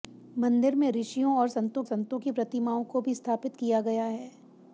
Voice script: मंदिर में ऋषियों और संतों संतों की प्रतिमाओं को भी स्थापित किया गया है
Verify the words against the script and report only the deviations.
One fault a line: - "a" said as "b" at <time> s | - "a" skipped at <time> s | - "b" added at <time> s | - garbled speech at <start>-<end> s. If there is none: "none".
none